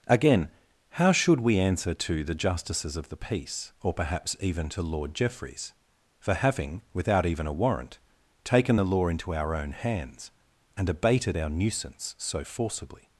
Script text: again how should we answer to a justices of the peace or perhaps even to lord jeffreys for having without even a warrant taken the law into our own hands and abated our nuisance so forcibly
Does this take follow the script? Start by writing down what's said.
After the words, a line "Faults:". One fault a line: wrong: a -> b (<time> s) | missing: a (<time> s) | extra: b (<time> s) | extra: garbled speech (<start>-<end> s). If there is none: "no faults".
again how should we answer to the justices of the peace or perhaps even to lord jeffreys for having without even a warrant taken the law into our own hands and abated our nuisance so forcibly
Faults:
wrong: a -> the (2.2 s)